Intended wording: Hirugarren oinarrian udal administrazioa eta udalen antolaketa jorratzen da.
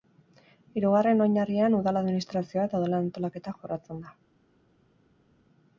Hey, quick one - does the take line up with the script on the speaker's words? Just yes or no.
yes